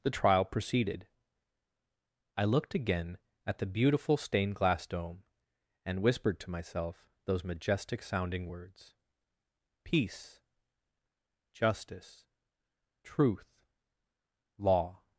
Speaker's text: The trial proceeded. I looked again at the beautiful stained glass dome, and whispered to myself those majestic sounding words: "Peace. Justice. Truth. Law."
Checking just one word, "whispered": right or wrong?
right